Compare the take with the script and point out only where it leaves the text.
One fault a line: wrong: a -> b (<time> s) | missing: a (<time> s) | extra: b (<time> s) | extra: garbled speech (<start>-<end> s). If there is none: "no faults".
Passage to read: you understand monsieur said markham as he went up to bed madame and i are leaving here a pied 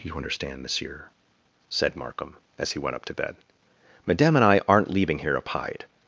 wrong: are -> aren't (4.7 s)